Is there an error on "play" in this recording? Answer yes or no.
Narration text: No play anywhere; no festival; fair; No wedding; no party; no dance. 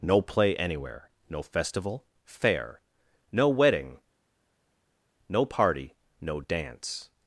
no